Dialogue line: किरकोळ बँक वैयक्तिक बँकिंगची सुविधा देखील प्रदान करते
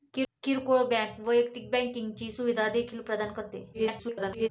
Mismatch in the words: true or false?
true